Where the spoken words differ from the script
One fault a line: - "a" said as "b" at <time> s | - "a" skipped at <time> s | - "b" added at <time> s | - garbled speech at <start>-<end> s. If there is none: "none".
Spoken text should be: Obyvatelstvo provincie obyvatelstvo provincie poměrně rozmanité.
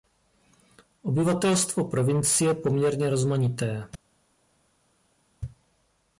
- "obyvatelstvo provincie" skipped at 2.5 s